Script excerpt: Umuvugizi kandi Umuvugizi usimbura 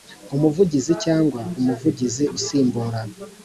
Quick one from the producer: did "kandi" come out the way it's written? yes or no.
no